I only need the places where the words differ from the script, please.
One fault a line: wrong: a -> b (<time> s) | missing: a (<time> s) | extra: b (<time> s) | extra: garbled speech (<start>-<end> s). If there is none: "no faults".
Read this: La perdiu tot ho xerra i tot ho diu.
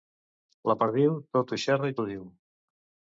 missing: tot (2.0 s)